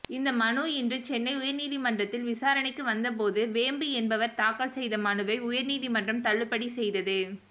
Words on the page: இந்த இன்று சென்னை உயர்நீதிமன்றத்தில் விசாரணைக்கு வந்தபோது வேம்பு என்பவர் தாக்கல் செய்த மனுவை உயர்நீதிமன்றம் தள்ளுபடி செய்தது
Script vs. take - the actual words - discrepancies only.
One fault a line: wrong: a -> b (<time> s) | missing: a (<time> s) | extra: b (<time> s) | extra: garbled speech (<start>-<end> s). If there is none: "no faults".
extra: மனு (0.3 s)